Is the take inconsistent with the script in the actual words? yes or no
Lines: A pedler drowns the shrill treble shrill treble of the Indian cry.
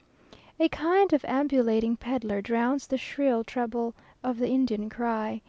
yes